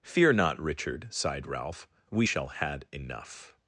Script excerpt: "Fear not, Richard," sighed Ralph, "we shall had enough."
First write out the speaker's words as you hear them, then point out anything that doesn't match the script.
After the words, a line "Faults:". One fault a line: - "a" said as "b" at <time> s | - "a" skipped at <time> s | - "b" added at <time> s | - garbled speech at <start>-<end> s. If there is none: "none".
"Fear not, Richard," sighed Ralph, "we shall had enough."
Faults:
none